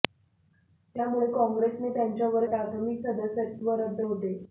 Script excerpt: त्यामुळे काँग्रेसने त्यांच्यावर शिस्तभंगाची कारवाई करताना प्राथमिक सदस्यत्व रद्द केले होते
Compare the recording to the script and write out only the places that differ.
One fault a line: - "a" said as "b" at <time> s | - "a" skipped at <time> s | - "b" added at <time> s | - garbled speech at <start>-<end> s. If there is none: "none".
- "शिस्तभंगाची कारवाई करताना" skipped at 2.5 s
- "केले" skipped at 4.0 s